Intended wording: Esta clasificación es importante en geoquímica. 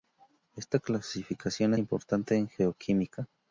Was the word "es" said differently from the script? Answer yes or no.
yes